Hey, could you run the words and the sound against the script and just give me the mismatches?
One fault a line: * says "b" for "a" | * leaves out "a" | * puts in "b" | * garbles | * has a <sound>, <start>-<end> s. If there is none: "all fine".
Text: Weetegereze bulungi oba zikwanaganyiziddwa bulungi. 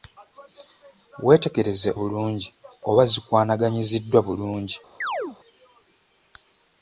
* has a chirp, 5.0-5.4 s